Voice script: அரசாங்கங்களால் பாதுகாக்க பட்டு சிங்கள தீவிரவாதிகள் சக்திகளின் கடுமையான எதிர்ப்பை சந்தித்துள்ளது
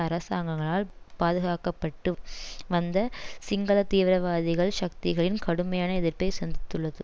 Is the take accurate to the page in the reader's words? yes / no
no